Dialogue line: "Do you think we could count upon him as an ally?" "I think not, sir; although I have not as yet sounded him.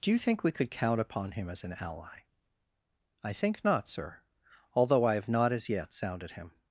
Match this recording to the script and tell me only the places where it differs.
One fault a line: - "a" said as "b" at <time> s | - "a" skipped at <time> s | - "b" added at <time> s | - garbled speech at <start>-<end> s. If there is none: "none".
none